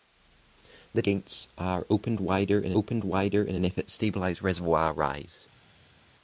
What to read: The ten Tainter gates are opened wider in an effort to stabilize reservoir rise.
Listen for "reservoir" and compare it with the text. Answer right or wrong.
right